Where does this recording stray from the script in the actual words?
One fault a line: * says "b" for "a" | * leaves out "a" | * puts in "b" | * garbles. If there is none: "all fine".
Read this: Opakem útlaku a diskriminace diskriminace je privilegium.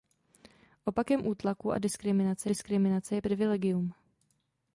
all fine